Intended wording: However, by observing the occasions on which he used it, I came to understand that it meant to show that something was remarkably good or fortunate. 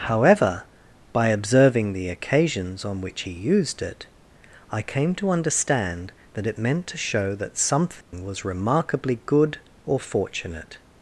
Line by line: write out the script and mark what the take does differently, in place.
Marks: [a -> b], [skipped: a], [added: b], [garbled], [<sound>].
However, by observing the occasions on which he used it, I came to understand that it meant to show that something [dropout] was remarkably good or fortunate.